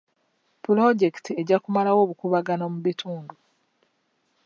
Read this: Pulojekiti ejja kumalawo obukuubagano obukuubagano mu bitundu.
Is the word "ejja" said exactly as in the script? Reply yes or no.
yes